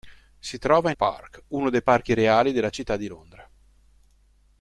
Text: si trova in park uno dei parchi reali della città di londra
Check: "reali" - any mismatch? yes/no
no